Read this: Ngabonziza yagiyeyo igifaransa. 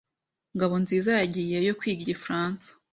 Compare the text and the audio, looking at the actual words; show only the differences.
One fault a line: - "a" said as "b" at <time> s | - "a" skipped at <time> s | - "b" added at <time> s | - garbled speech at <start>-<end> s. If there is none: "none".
- "kwiga" added at 1.8 s